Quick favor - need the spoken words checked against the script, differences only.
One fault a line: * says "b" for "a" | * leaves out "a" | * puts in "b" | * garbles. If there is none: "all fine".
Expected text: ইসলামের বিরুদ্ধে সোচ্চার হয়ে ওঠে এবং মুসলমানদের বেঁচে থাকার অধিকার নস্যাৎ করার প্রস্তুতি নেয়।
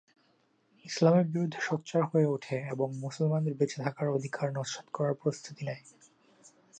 all fine